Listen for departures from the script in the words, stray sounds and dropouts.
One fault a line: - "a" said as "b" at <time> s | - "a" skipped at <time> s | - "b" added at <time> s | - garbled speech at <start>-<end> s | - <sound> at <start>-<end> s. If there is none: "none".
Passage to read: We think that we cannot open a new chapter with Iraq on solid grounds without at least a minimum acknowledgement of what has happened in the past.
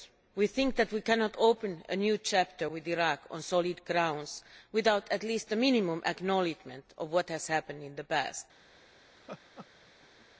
- laugh at 9.2-10.3 s